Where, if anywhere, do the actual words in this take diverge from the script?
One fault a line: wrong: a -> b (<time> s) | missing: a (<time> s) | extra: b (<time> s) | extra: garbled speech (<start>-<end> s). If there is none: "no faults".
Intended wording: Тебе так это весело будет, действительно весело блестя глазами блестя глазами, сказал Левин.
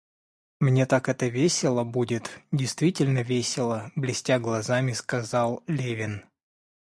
wrong: Тебе -> Мне (0.6 s)
missing: блестя глазами (4.9 s)